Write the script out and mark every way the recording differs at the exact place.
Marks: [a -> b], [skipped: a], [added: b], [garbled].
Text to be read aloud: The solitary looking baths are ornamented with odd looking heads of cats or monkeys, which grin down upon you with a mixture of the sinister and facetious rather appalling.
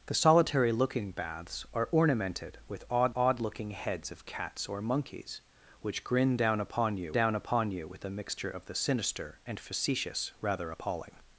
The solitary looking baths are ornamented with odd [added: odd] looking heads of cats or monkeys, which grin down upon you [added: down upon you] with a mixture of the sinister and facetious rather appalling.